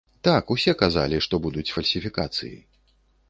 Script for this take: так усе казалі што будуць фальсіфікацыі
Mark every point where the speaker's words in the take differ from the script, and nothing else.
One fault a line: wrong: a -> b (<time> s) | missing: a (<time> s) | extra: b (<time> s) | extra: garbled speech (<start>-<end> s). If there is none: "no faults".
no faults